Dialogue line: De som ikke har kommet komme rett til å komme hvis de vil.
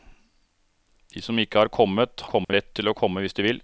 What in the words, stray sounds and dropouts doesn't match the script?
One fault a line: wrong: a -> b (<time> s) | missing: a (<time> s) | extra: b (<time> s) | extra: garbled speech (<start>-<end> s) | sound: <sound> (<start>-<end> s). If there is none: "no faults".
sound: dropout (2.4-2.5 s)